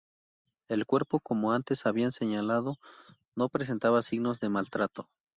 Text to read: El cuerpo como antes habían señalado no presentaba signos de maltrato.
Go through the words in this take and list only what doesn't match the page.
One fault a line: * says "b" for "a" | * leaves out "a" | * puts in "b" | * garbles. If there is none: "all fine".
all fine